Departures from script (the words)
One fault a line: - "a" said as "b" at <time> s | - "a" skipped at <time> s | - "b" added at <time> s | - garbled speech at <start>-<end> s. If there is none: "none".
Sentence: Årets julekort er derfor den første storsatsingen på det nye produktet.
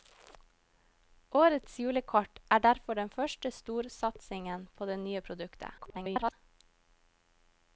- garbled speech at 5.8-6.3 s